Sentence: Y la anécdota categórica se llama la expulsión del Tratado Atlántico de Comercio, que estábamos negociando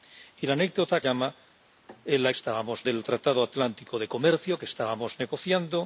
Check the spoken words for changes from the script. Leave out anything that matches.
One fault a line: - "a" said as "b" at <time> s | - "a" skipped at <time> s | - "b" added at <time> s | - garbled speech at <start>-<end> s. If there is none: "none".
- "categórica se" skipped at 1.0 s
- "expulsión" said as "estábamos" at 2.3 s